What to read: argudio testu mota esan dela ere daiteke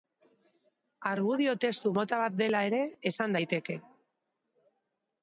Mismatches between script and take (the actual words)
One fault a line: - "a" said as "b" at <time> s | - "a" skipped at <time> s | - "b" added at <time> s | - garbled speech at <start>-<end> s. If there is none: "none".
- "esan" said as "bat" at 2.2 s
- "esan" added at 3.1 s